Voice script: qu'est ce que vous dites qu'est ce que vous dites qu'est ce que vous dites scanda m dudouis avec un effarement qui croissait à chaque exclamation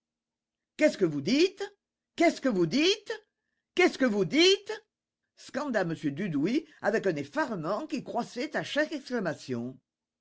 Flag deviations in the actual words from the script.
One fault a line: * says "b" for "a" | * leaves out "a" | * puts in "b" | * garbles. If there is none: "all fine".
all fine